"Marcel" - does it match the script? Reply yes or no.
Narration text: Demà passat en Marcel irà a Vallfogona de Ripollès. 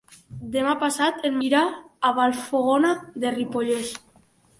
no